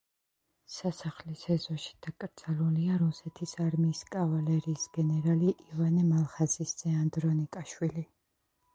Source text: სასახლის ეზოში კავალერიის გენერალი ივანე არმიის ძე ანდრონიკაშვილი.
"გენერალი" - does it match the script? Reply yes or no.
yes